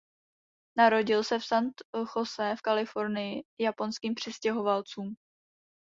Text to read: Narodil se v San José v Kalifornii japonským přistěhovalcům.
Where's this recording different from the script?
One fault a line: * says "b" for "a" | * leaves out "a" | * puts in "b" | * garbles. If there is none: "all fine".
all fine